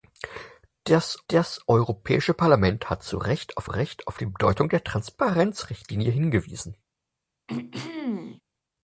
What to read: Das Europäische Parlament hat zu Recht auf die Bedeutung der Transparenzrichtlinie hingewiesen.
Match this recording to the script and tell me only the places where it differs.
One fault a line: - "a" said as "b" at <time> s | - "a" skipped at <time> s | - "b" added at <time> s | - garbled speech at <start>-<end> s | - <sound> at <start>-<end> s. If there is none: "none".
- "das" added at 1.3 s
- "Recht auf" added at 3.6 s
- throat clearing at 7.5-8.4 s